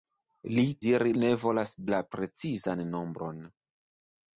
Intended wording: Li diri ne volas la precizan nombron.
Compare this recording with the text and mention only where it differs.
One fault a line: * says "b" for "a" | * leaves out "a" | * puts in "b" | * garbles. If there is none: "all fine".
all fine